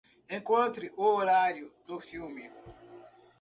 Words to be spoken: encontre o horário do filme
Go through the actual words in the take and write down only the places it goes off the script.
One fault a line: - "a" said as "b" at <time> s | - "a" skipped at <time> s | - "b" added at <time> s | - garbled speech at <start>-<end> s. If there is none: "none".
none